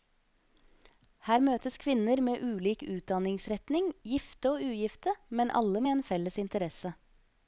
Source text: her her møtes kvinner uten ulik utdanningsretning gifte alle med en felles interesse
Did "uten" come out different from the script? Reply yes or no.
yes